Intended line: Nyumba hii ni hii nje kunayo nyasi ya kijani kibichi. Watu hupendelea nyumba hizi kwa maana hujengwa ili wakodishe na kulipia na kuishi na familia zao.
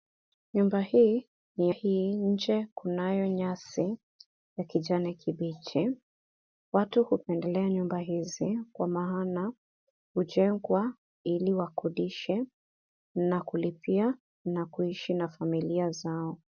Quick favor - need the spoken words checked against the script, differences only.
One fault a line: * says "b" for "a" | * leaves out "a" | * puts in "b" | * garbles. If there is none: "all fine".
all fine